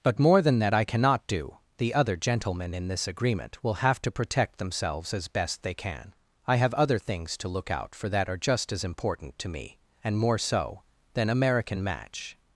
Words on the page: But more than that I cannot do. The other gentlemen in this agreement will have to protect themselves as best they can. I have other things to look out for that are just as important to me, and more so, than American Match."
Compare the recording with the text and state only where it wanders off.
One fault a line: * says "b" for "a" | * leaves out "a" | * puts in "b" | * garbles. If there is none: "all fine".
all fine